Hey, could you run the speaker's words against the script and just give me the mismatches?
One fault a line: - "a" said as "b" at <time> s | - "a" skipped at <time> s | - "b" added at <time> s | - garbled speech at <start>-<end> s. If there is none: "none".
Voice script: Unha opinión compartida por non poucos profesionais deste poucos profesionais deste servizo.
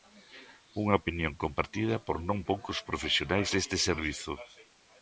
- "poucos profesionais deste" skipped at 3.8 s